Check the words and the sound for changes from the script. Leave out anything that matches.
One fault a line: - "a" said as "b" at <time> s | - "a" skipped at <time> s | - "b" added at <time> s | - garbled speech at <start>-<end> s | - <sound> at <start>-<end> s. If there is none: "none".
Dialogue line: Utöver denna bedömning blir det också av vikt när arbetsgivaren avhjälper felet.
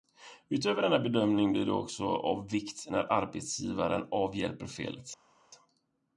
none